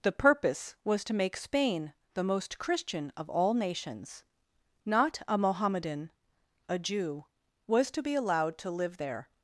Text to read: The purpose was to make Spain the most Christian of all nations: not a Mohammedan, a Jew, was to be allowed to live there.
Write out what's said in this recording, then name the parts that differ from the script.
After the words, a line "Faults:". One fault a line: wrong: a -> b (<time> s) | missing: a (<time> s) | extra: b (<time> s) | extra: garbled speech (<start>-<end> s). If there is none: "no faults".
The purpose was to make Spain the most Christian of all nations: not a Mohammedan, a Jew, was to be allowed to live there.
Faults:
no faults